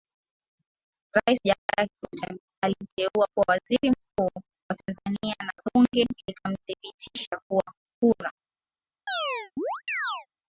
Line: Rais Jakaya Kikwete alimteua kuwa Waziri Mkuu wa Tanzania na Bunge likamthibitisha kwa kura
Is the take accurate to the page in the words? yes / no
yes